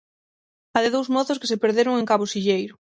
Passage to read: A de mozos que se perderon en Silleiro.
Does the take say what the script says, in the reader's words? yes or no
no